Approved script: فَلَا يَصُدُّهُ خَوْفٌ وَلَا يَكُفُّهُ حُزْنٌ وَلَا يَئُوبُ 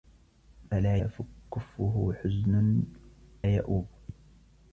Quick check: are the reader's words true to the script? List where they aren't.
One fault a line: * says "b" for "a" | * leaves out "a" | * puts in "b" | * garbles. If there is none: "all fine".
* leaves out "يَصُدُّهُ خَوْفٌ وَلَا"
* leaves out "وَلَا"